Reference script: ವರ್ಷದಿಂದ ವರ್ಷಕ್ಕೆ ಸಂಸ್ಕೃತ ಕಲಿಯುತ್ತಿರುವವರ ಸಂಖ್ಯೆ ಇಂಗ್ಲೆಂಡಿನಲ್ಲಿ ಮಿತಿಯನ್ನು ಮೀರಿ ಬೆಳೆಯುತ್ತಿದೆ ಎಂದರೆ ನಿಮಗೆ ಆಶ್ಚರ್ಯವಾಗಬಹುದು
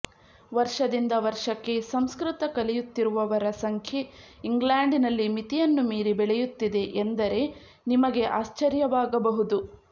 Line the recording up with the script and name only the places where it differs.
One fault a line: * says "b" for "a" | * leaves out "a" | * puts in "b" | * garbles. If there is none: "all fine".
all fine